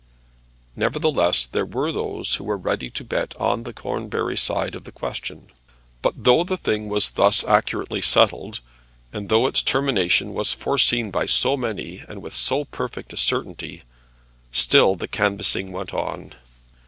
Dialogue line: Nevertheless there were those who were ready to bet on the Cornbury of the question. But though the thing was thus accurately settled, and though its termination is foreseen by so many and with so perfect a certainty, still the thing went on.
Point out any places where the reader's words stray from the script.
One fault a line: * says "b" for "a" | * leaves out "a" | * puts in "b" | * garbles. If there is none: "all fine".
* puts in "side"
* says "was" for "is"
* says "canvassing" for "thing"